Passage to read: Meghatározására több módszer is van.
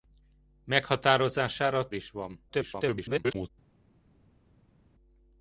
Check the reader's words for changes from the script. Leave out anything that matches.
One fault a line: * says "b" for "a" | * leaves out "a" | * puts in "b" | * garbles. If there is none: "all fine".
* leaves out "több módszer"
* garbles